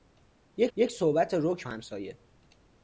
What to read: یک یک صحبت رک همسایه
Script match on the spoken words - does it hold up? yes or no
yes